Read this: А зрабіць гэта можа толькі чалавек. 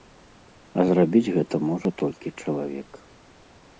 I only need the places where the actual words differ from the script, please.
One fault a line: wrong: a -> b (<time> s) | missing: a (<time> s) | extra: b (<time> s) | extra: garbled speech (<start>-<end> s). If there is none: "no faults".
no faults